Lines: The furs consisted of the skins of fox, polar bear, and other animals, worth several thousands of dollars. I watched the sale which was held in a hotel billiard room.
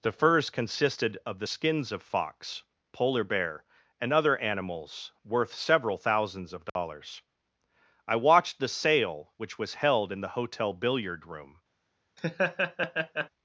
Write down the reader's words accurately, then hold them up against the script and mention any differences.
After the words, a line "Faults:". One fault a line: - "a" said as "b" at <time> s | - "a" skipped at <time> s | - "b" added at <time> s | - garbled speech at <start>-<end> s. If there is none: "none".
The furs consisted of the skins of fox, polar bear, and other animals, worth several thousands of dollars. I watched the sale which was held in the hotel billiard room.
Faults:
- "a" said as "the" at 10.2 s